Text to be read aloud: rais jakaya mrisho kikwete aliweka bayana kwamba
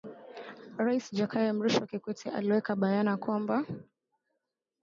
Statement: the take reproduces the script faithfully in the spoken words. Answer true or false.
true